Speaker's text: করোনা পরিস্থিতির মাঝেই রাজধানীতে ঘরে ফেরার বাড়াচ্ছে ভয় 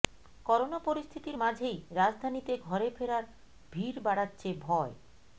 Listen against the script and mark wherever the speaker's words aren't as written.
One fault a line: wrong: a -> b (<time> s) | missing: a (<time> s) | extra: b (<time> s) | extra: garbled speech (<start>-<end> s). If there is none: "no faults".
extra: ভিড় (3.7 s)